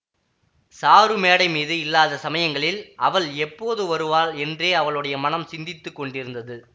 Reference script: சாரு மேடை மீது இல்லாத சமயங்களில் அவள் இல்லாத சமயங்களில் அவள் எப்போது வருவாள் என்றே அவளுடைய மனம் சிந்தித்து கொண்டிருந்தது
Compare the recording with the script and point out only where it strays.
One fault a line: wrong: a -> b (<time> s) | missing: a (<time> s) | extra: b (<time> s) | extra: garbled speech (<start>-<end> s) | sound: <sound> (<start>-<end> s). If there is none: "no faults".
missing: இல்லாத சமயங்களில் அவள் (3.3 s)